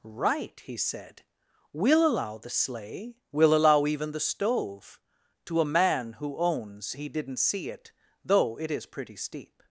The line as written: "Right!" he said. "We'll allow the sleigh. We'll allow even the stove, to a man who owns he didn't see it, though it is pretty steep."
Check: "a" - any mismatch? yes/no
no